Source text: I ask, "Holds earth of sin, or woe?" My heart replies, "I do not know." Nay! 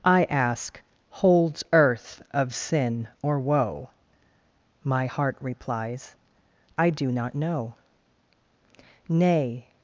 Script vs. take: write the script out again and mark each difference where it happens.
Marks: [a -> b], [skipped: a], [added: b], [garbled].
I ask, "Holds earth of sin, or woe?" My heart replies, "I do not know." Nay!